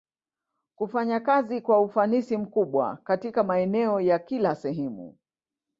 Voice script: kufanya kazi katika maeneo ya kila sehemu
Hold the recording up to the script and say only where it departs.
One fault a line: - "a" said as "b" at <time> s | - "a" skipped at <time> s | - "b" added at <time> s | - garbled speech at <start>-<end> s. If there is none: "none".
- "kwa ufanisi mkubwa" added at 1.6 s